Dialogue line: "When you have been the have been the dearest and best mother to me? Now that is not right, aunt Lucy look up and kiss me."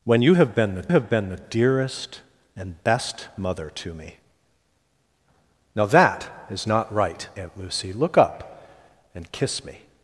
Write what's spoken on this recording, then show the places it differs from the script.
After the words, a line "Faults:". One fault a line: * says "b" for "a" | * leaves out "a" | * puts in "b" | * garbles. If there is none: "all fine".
"When you have been the have been the dearest and best mother to me? Now that is not right, aunt Lucy look up and kiss me."
Faults:
all fine